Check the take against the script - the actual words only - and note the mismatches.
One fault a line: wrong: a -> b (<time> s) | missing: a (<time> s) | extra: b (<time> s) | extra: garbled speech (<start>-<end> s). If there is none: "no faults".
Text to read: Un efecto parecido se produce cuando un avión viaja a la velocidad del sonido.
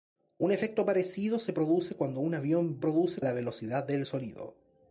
wrong: viaja -> produce (2.8 s)